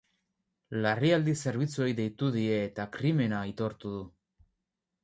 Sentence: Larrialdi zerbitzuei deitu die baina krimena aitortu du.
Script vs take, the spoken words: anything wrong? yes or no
yes